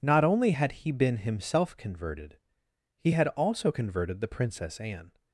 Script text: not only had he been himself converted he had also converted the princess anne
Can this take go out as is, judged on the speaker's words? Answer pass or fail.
pass